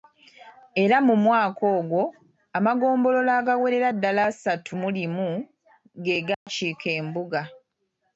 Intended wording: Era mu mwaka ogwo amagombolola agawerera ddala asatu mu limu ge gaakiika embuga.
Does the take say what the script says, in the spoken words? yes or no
yes